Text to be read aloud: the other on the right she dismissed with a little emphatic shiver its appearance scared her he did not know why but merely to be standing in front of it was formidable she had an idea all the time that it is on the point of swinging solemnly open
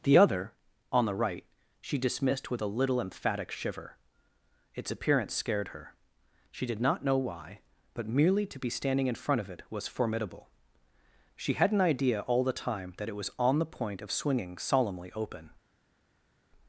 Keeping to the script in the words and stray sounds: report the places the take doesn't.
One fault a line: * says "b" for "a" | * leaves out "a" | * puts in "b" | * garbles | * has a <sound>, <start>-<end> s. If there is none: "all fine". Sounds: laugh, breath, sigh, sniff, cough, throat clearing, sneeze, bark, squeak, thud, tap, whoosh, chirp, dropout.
* says "she" for "he"
* says "was" for "is"